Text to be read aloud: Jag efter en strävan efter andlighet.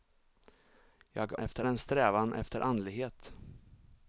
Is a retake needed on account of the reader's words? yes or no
no